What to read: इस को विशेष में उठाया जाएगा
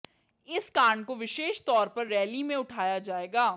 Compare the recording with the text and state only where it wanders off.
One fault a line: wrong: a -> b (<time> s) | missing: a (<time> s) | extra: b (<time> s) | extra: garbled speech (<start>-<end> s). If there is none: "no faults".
extra: कांड (0.7 s)
extra: तौर पर रैली (1.7 s)